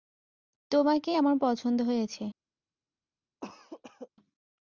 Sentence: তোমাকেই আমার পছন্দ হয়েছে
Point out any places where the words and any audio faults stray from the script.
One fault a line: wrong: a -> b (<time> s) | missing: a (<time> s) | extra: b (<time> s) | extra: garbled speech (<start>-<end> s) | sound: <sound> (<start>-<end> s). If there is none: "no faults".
sound: cough (3.4-4.1 s)